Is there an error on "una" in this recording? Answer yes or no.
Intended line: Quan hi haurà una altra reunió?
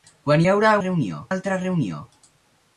yes